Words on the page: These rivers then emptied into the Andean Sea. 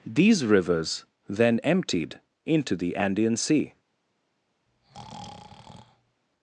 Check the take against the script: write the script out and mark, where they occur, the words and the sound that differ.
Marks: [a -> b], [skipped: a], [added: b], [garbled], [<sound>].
These rivers then emptied into the Andean Sea. [breath]